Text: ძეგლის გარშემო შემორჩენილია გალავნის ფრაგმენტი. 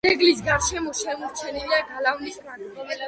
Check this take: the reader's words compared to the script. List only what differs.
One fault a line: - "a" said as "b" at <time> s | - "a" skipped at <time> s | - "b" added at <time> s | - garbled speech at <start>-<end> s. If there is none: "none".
none